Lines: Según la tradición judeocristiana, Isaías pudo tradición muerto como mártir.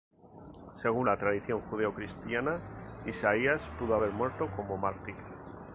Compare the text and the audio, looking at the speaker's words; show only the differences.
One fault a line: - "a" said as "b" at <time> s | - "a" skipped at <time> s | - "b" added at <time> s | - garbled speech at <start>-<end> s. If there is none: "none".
- "tradición" said as "haber" at 3.9 s